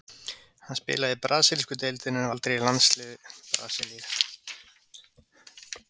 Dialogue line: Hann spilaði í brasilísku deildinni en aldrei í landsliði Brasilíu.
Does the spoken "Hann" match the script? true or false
true